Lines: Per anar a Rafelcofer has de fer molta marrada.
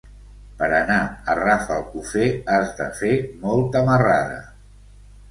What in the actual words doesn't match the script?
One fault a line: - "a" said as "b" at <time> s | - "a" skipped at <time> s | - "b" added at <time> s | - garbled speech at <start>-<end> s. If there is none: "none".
none